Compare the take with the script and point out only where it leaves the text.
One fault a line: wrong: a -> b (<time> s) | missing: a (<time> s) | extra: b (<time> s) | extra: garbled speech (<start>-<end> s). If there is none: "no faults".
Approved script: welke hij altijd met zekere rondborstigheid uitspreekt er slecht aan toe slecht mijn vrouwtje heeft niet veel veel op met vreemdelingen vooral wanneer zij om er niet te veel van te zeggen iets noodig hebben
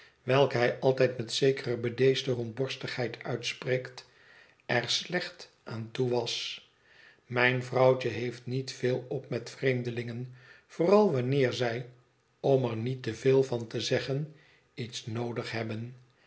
extra: bedeesde (1.8 s)
wrong: slecht -> was (6.1 s)
missing: veel (9.0 s)